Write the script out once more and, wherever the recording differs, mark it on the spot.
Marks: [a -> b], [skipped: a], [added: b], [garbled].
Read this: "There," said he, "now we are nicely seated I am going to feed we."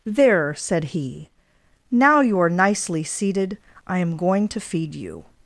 "There," said he, "now [we -> you] are nicely seated I am going to feed [we." -> you]